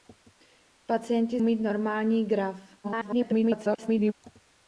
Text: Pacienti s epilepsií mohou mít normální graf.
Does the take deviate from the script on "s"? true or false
true